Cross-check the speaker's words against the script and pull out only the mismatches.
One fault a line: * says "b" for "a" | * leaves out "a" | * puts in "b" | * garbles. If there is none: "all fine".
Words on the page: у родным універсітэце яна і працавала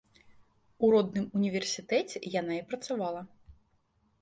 all fine